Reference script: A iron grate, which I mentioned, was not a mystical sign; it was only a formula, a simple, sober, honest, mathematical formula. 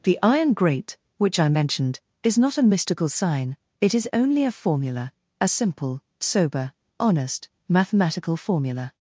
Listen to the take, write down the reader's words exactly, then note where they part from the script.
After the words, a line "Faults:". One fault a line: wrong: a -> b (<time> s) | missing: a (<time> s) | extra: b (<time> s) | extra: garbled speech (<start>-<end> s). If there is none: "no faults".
The iron grate, which I mentioned, is not a mystical sign; it is only a formula, a simple, sober, honest, mathematical formula.
Faults:
wrong: A -> The (0.0 s)
wrong: was -> is (2.2 s)
wrong: was -> is (3.9 s)